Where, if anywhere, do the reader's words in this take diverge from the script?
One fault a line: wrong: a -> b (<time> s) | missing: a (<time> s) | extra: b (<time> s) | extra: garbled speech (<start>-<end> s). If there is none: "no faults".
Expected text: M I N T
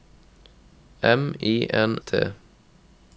no faults